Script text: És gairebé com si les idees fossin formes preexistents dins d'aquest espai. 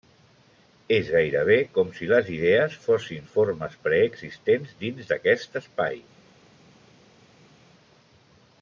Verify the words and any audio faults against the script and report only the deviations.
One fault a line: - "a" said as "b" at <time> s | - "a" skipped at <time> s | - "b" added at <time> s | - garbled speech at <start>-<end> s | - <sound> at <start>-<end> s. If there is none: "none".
none